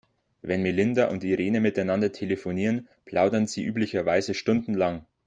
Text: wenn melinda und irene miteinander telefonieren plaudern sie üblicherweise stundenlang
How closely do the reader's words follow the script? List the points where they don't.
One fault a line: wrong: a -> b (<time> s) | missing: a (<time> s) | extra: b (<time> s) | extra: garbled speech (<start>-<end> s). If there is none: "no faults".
no faults